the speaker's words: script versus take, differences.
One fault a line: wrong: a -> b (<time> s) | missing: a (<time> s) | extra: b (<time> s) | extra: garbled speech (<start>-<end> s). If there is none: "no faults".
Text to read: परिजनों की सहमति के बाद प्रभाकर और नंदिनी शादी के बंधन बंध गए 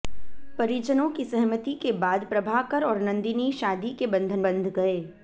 no faults